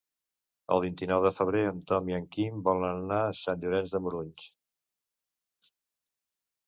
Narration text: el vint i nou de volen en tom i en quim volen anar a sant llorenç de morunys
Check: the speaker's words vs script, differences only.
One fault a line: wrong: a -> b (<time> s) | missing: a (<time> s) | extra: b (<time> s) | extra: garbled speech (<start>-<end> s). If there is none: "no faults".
wrong: volen -> febrer (1.4 s)